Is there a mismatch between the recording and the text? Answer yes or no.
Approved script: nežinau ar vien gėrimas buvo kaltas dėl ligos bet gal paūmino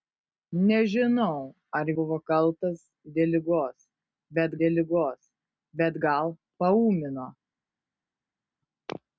yes